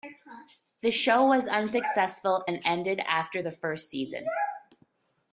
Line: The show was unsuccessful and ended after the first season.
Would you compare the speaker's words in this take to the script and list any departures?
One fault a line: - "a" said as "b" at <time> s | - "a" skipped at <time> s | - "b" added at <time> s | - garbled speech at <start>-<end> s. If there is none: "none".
none